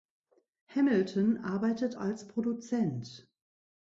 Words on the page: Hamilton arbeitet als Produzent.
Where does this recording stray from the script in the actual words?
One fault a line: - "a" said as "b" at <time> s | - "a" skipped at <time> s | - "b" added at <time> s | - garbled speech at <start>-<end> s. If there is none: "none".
none